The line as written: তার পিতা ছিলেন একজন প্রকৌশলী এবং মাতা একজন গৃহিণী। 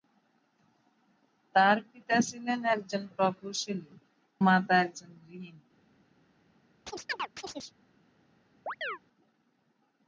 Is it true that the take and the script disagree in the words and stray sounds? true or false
true